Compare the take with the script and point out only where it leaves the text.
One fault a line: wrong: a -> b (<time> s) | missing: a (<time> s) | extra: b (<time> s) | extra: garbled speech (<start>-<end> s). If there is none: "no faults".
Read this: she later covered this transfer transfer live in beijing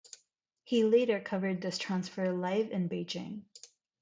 wrong: she -> he (0.6 s)
missing: transfer (2.3 s)